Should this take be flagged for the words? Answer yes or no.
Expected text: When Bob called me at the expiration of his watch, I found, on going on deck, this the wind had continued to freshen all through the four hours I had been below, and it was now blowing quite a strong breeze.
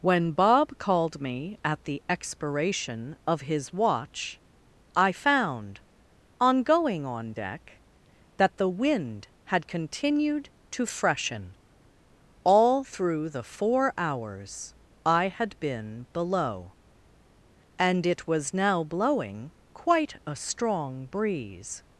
yes